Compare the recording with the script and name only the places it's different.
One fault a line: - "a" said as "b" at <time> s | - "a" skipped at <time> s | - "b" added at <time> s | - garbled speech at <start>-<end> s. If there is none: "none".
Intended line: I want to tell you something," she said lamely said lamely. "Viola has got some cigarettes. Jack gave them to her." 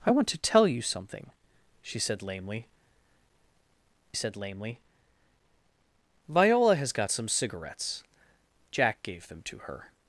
none